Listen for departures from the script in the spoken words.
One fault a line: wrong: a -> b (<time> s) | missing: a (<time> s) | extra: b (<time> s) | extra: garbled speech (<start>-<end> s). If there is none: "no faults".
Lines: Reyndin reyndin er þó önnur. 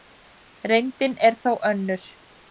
missing: reyndin (1.1 s)